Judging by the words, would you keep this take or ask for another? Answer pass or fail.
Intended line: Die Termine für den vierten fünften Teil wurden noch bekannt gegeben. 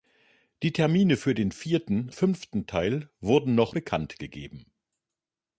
pass